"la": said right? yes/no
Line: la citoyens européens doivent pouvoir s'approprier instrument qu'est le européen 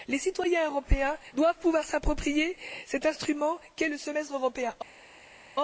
no